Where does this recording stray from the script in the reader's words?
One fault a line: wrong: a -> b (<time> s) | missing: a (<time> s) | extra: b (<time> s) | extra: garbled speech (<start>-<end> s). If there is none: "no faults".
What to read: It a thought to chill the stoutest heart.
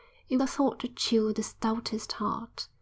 no faults